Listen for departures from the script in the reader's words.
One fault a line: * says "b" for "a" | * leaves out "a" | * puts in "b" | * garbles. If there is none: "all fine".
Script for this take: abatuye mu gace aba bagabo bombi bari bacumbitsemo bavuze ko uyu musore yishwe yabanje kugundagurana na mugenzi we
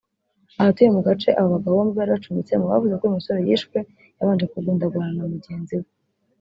all fine